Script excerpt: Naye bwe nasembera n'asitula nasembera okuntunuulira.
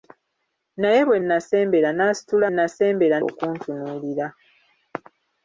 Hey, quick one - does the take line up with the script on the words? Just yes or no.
yes